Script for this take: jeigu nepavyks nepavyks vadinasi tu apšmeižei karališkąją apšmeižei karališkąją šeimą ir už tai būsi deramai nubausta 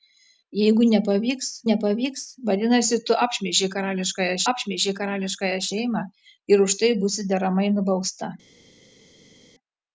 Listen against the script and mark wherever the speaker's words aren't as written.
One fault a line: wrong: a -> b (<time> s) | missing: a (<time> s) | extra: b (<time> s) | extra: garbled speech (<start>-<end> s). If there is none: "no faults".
no faults